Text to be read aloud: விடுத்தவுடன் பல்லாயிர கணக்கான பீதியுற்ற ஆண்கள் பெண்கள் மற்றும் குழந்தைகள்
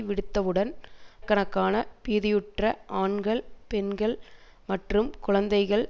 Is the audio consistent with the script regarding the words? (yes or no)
no